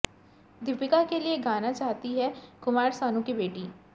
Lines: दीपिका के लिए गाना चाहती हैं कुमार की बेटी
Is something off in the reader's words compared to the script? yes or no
yes